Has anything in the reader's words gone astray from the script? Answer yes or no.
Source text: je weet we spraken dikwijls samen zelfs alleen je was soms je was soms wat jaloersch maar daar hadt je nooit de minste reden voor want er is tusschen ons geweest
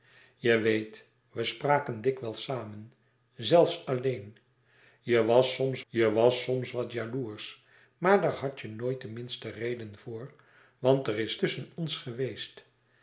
no